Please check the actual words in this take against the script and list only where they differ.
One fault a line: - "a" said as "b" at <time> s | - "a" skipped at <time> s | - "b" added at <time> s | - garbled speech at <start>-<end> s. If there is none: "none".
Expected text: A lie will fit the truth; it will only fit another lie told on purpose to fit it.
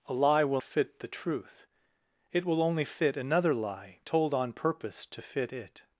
none